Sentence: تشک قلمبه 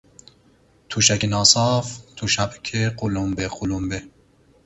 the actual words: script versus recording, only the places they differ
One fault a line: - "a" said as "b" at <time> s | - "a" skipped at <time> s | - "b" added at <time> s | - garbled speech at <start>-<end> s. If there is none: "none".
- "ناصاف تشک قلمبه" added at 1.2 s